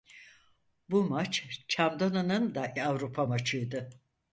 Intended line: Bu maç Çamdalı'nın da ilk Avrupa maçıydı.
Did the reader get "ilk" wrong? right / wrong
wrong